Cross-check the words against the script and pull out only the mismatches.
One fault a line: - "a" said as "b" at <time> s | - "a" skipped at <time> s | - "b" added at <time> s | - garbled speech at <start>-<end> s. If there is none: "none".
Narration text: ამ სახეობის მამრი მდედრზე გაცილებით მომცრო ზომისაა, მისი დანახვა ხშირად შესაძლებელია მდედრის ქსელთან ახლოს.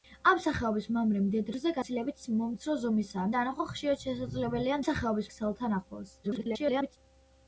- "მისი" skipped at 3.3 s
- "მდედრის" said as "სახეობის" at 4.8 s
- garbled speech at 6.2-7.0 s